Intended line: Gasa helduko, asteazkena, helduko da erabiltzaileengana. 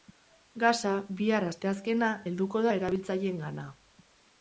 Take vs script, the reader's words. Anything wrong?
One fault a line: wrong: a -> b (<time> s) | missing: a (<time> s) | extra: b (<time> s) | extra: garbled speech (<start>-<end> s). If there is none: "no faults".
wrong: helduko -> bihar (1.2 s)